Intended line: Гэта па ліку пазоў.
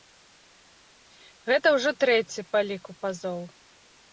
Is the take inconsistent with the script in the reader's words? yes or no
yes